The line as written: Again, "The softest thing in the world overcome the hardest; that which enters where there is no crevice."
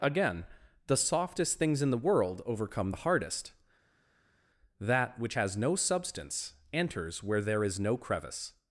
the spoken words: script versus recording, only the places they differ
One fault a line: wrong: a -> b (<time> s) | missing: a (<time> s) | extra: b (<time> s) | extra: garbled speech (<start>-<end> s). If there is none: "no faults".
wrong: thing -> things (1.6 s)
extra: has no substance (5.3 s)